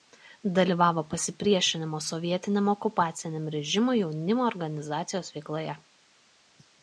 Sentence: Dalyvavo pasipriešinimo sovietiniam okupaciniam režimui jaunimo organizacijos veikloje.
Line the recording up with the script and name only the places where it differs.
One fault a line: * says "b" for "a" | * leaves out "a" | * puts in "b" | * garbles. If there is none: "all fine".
all fine